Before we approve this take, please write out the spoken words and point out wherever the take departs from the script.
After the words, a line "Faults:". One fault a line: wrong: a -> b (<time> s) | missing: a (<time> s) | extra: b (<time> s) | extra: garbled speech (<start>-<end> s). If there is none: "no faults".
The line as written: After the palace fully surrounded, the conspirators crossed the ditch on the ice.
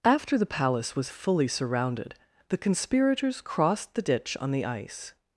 After the palace was fully surrounded, the conspirators crossed the ditch on the ice.
Faults:
extra: was (0.9 s)